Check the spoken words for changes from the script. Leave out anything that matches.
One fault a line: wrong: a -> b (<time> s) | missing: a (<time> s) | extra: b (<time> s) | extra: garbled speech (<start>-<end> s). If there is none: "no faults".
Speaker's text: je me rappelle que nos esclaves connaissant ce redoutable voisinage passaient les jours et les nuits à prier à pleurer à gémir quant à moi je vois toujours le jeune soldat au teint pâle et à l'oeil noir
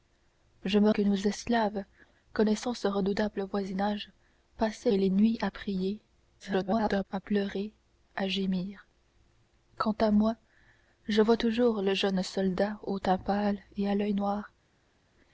missing: rappelle (0.9 s)
missing: les jours (4.9 s)
extra: garbled speech (6.4-7.1 s)